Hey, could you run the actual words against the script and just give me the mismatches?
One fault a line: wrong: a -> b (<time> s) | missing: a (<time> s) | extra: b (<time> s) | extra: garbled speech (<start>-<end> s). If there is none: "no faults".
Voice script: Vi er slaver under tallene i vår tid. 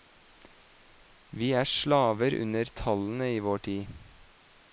no faults